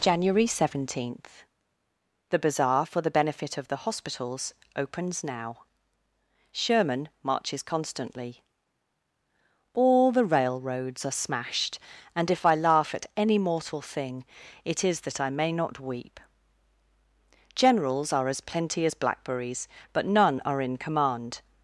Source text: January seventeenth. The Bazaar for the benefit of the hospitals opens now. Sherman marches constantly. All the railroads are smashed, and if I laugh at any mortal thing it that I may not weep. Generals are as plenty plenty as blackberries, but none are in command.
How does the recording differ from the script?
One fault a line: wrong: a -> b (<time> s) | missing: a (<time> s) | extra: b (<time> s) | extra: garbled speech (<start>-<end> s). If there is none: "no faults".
extra: is (14.8 s)
missing: plenty (18.9 s)